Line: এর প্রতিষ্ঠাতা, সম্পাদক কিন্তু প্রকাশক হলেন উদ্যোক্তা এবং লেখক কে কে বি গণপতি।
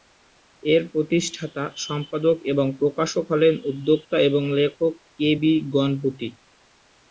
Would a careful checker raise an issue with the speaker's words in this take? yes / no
yes